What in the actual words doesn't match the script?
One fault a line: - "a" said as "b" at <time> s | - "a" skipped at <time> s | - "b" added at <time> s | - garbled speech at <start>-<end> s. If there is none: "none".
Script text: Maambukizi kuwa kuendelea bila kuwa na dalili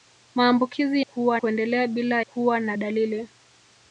none